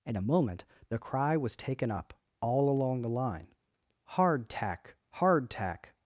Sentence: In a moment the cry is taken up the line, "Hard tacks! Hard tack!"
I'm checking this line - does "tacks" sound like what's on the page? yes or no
no